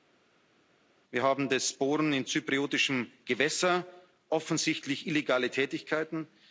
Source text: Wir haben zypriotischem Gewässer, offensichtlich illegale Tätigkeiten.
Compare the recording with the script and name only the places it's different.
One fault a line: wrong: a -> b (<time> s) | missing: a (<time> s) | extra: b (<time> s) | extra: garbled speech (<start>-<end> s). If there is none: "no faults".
extra: das Bohren in (1.5 s)